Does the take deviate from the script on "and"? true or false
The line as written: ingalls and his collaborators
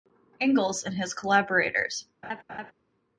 false